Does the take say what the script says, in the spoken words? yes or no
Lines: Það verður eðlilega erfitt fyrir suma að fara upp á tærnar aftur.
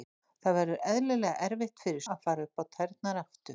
no